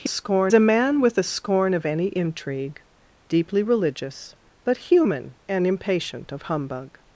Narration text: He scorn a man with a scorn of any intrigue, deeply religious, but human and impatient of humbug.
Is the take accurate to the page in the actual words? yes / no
yes